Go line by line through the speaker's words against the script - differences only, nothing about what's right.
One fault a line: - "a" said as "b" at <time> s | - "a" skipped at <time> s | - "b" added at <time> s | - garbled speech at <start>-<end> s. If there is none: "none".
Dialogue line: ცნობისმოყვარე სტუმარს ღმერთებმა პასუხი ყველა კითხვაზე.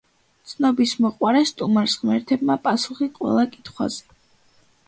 none